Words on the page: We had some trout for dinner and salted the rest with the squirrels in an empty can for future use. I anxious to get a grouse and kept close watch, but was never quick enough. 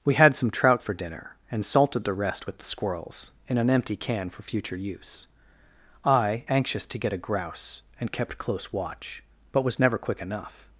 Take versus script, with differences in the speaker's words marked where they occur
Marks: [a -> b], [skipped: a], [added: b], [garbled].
We had some trout for dinner and salted the rest with the squirrels in an empty can for future use. I anxious to get a grouse and kept close watch, but was never quick enough.